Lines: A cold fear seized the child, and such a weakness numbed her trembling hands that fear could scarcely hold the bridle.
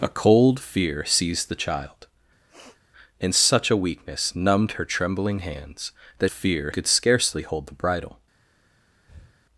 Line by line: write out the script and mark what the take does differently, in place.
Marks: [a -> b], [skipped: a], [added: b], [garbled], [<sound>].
A cold fear seized the child, [sniff] and such a weakness numbed her trembling hands that fear could scarcely hold the bridle. [breath]